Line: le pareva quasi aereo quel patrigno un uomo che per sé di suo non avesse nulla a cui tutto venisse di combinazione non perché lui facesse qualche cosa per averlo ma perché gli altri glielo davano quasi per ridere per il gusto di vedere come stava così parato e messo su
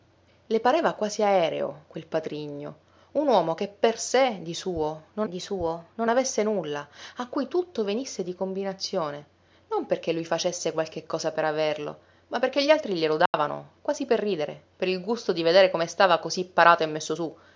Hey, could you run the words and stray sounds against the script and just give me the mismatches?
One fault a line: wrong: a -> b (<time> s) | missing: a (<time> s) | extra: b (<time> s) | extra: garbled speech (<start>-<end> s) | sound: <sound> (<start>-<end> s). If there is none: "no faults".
extra: di suo non (5.3 s)
sound: dropout (13.3-13.3 s)